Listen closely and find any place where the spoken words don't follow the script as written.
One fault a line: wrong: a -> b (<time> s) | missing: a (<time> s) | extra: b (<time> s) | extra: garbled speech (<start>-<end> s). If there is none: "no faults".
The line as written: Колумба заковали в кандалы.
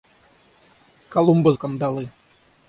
missing: заковали (1.5 s)